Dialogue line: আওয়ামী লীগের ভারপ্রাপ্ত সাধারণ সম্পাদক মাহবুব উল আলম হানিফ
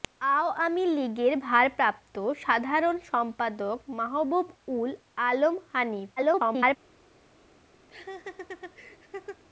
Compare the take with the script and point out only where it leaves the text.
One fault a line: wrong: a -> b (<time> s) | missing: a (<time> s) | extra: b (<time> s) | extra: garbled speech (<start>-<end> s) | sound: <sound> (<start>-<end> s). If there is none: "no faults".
extra: garbled speech (6.2-6.8 s)
sound: laugh (7.9-9.4 s)